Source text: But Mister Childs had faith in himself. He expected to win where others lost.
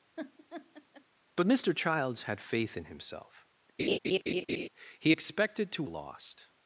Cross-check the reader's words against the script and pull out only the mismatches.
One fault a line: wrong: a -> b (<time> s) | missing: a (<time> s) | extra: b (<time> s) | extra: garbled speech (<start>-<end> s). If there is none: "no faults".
missing: win where others (5.8 s)